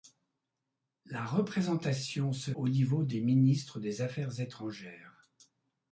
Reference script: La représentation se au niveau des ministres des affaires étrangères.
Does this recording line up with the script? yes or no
yes